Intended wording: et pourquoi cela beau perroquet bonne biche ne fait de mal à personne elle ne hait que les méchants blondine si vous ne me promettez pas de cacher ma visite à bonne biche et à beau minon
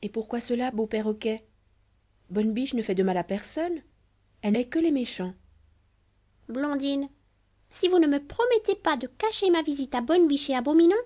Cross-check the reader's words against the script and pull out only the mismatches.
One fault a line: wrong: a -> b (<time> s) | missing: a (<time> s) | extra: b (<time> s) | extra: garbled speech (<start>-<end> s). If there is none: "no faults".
missing: ne (4.6 s)